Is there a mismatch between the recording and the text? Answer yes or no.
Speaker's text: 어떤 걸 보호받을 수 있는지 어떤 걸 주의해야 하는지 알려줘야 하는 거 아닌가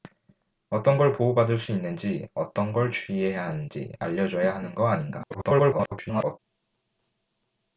yes